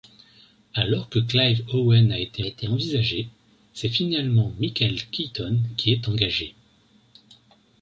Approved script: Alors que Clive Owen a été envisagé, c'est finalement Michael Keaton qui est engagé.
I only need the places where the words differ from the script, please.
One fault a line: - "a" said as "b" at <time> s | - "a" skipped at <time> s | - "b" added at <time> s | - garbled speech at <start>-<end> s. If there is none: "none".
- "été" added at 2.4 s